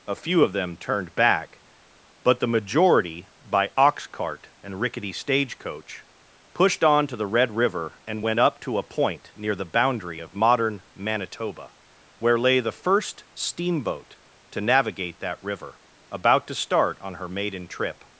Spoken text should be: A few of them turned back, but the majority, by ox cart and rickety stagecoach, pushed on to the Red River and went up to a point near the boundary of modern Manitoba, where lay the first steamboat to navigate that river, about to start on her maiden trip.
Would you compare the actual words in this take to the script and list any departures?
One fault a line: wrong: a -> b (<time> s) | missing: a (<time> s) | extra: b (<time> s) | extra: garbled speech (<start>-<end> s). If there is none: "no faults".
no faults